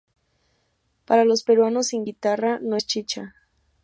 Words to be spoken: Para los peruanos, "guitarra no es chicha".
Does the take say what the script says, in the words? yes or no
no